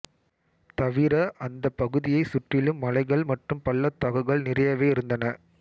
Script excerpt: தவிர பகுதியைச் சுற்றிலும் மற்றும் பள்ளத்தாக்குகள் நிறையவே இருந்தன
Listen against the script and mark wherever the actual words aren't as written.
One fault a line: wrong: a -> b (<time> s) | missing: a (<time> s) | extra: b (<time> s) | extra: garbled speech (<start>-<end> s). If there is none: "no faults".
extra: அந்தப் (1.4 s)
extra: மலைகள் (2.8 s)